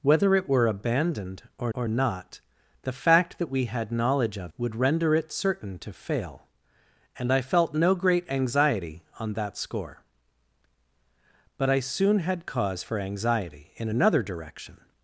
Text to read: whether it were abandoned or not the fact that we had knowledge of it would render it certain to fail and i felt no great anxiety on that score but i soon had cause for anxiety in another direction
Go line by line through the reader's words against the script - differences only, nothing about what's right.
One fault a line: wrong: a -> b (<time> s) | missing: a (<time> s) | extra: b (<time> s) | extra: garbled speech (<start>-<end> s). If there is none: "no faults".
extra: or (1.7 s)
missing: it (4.5 s)